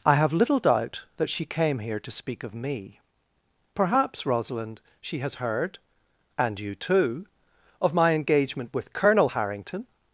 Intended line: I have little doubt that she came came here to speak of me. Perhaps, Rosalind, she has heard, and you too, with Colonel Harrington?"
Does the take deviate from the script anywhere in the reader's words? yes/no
yes